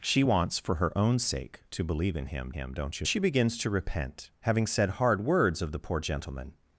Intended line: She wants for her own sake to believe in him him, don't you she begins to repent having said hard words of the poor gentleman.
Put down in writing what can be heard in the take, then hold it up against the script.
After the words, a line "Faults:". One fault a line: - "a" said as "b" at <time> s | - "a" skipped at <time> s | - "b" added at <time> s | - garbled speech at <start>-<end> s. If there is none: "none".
She wants for her own sake to believe in him him, don't you she begins to repent having said hard words of the poor gentleman.
Faults:
none